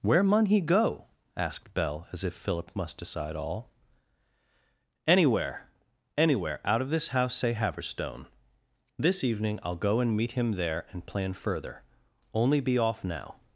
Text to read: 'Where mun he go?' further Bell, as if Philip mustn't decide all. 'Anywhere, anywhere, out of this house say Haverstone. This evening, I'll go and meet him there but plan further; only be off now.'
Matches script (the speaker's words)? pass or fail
fail